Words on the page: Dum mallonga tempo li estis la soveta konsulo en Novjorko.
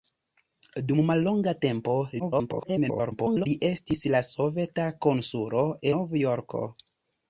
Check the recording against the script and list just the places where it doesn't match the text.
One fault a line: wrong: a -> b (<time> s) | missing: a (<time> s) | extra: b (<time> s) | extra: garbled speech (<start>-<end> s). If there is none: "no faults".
extra: garbled speech (2.2-3.5 s)
missing: en (5.7 s)